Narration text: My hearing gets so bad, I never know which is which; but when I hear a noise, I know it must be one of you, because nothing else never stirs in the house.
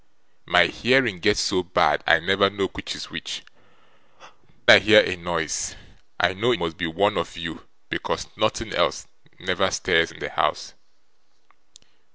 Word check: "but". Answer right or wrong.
wrong